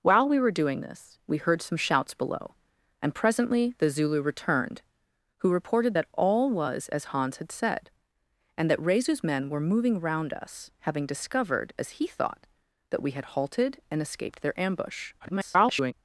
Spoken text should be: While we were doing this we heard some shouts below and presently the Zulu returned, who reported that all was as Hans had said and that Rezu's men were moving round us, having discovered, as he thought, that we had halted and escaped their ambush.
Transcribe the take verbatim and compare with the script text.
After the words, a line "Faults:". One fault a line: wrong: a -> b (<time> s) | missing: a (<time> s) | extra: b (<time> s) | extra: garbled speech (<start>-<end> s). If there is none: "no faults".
While we were doing this we heard some shouts below and presently the Zulu returned, who reported that all was as Hans had said and that Rezu's men were moving round us, having discovered, as he thought, that we had halted and escaped their ambush. [garbled]
Faults:
extra: garbled speech (15.2-15.9 s)